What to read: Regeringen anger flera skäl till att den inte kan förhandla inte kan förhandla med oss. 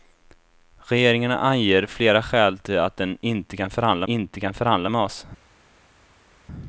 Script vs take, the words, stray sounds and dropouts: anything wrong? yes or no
no